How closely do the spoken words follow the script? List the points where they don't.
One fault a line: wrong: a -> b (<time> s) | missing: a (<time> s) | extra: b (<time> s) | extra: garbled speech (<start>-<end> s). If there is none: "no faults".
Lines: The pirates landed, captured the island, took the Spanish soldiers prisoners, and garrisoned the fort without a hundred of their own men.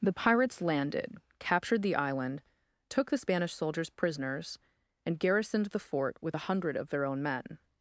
wrong: without -> with (6.2 s)